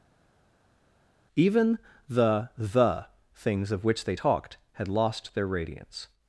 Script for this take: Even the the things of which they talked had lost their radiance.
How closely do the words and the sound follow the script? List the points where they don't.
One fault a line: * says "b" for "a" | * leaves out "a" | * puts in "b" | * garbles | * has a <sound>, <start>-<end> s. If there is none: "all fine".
all fine